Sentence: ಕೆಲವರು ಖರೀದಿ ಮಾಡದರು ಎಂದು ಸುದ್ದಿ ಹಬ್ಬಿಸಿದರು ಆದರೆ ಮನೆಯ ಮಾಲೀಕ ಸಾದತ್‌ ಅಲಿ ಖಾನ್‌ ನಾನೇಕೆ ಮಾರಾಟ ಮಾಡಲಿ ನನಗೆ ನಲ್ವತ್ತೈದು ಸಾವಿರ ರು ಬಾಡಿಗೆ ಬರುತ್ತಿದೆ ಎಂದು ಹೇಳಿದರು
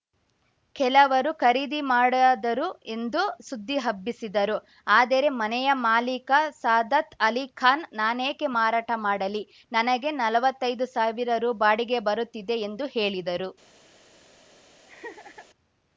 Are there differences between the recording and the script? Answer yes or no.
no